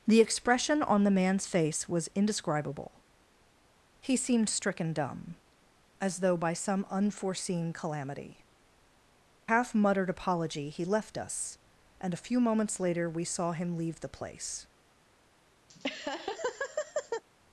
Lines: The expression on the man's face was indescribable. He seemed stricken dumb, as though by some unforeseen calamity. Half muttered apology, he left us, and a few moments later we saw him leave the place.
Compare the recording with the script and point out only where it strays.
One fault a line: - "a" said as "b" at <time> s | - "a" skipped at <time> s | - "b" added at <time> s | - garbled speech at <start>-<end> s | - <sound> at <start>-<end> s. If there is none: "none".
- laugh at 15.7-17.2 s